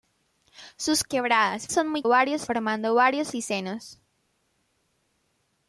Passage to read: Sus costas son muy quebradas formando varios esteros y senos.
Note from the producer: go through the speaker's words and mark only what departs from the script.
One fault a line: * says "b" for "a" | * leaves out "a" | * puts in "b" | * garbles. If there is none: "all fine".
* says "quebradas" for "costas"
* says "varios" for "quebradas"
* leaves out "esteros"